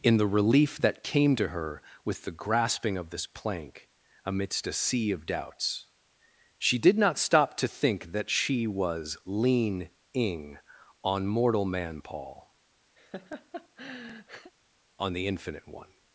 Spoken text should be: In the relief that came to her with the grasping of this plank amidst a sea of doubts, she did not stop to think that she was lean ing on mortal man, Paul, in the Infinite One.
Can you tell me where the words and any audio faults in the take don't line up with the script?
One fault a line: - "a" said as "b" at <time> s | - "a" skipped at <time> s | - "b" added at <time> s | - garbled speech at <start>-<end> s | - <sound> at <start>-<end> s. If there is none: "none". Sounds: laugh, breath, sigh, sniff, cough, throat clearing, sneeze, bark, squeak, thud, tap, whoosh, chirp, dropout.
- laugh at 13.0-14.5 s
- "in" said as "on" at 15.0 s